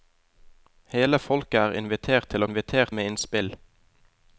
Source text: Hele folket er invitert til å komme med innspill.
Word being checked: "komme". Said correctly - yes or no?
no